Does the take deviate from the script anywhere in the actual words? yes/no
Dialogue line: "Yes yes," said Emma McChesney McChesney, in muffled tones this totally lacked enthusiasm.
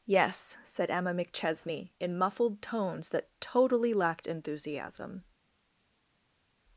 yes